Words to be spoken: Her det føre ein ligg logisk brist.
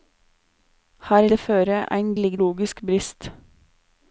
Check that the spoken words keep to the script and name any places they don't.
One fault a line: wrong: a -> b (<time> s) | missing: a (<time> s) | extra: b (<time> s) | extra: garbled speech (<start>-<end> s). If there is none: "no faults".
no faults